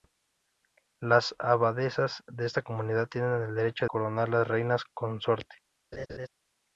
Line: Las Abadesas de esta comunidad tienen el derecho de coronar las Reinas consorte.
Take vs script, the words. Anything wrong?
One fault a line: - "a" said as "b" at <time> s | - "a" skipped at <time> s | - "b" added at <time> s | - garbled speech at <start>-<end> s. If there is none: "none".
- "de" skipped at 3.9 s